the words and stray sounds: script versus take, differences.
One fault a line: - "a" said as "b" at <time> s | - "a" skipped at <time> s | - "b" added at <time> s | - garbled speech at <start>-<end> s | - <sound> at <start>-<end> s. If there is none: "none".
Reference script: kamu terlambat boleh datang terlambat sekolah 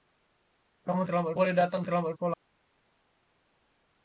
none